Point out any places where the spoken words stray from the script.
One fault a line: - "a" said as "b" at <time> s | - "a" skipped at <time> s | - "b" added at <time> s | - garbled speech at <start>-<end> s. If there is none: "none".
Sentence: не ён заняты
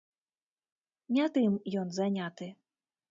- "тым" added at 1.4 s